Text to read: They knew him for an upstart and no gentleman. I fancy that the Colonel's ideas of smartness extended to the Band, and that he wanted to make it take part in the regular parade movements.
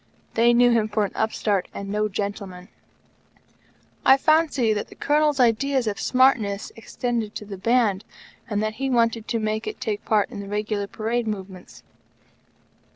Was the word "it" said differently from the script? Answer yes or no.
no